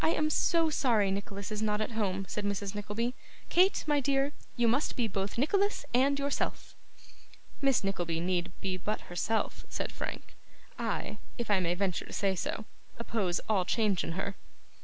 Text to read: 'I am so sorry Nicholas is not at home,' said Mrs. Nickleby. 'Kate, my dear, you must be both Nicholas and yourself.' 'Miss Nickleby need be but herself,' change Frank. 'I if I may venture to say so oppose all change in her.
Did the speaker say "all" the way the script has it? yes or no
yes